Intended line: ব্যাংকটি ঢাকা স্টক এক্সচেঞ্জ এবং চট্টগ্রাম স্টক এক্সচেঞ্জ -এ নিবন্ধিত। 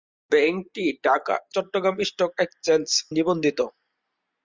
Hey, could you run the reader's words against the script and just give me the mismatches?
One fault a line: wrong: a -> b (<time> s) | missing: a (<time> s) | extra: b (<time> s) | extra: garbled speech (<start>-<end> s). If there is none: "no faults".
missing: স্টক এক্সচেঞ্জ এবং (1.4 s)
missing: এ (2.9 s)